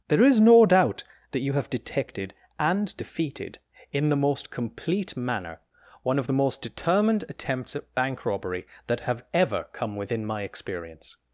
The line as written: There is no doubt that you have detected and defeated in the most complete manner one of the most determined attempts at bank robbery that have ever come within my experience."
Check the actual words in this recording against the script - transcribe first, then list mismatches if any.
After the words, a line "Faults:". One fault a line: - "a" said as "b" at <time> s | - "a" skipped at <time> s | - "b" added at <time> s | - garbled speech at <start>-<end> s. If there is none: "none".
There is no doubt that you have detected and defeated in the most complete manner one of the most determined attempts at bank robbery that have ever come within my experience."
Faults:
none